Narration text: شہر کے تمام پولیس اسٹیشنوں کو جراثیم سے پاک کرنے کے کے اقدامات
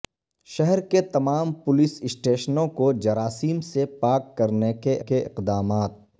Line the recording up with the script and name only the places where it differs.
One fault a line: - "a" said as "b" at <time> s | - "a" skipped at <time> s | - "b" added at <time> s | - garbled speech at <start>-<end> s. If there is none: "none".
none